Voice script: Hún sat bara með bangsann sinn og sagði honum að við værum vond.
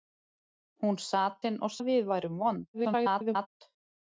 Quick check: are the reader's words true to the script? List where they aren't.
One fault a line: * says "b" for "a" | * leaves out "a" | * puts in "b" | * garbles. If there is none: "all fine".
* leaves out "bara með bangsann"
* leaves out "sagði honum"
* garbles